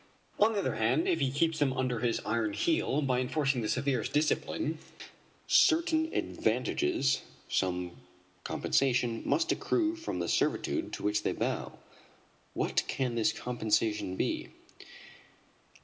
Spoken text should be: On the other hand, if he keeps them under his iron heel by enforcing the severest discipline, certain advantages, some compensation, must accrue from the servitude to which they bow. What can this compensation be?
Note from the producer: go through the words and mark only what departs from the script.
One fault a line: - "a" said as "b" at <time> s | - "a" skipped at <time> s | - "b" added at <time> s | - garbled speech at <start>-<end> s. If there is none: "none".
none